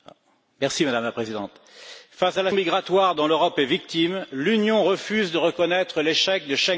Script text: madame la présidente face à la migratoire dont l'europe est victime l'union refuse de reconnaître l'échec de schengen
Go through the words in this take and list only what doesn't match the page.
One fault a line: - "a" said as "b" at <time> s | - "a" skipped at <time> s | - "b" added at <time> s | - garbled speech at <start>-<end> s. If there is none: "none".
none